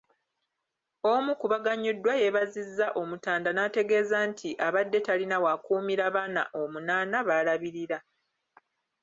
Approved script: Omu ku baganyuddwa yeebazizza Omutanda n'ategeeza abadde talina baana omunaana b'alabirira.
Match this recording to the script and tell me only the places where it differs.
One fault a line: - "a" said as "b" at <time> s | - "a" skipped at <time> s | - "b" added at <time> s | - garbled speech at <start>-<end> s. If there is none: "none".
- "nti" added at 4.3 s
- "w'akuumira" added at 5.4 s